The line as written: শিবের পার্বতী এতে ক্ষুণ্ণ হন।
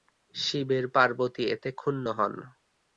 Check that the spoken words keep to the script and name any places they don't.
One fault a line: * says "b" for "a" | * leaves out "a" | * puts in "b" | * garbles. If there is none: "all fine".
all fine